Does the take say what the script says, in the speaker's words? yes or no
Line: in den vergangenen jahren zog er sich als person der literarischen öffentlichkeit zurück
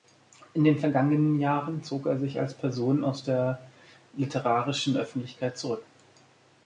no